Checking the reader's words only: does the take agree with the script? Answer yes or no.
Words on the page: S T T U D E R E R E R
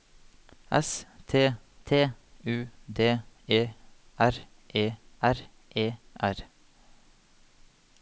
yes